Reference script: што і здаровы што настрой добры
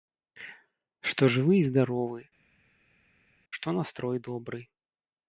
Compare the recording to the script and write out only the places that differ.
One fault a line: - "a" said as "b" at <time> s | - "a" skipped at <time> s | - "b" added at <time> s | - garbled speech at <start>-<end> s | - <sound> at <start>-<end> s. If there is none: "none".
- "жывы" added at 1.4 s